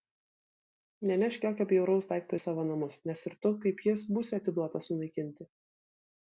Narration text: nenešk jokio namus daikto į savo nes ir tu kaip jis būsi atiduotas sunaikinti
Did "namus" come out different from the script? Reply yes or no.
yes